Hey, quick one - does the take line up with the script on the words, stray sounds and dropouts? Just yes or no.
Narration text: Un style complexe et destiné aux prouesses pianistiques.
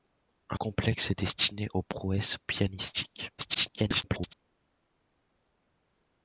no